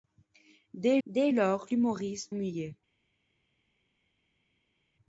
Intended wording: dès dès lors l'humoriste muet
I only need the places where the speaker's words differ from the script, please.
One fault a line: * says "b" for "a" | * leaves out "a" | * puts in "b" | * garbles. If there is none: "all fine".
all fine